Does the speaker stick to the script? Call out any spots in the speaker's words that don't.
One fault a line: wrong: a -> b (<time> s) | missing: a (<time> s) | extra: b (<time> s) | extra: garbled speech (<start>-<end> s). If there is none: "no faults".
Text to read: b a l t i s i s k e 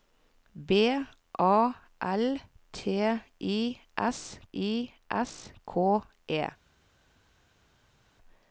no faults